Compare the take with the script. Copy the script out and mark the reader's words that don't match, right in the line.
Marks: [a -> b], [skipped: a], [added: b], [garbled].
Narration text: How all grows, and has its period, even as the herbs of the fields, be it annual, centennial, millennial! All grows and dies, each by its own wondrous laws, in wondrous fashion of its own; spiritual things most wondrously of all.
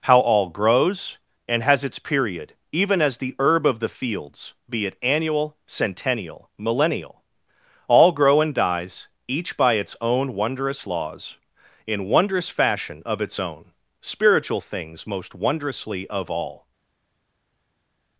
How all grows, and has its period, even as the [herbs -> herb] of the fields, be it annual, centennial, millennial! All [grows -> grow] and dies, each by its own wondrous laws, in wondrous fashion of its own; spiritual things most wondrously of all.